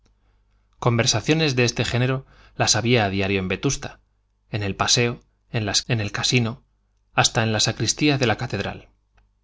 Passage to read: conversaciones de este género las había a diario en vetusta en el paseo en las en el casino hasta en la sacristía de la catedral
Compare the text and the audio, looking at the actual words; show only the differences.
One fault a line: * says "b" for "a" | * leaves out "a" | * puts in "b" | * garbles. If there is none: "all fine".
all fine